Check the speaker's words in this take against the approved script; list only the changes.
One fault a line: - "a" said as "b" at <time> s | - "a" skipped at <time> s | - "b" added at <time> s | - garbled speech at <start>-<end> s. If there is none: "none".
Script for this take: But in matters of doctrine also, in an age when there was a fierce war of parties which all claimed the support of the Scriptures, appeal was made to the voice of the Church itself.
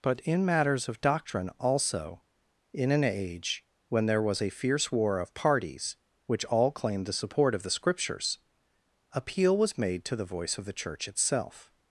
none